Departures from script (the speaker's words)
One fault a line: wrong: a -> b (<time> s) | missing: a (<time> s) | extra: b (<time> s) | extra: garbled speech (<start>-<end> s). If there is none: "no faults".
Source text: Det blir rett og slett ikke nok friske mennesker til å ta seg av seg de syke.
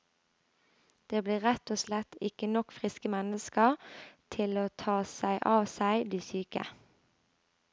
no faults